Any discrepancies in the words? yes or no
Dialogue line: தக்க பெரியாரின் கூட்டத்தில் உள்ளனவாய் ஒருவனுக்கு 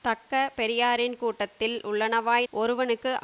no